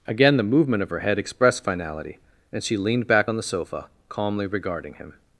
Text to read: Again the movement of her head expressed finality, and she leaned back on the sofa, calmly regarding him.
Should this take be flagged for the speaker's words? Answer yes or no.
no